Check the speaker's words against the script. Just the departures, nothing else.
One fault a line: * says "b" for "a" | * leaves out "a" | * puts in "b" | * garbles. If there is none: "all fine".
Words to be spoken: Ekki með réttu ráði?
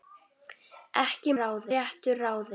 * says "ráði" for "með"